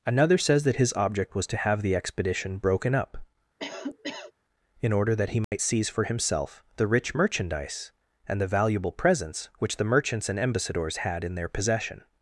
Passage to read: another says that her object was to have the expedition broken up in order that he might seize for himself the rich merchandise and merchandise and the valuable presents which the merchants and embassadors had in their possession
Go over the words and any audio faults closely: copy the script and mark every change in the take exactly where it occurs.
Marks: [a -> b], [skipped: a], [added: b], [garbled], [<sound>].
another says that [her -> his] object was to have the expedition broken up [cough] in order that he might [dropout] seize for himself the rich merchandise and [skipped: merchandise and] the valuable presents which the merchants and embassadors had in their possession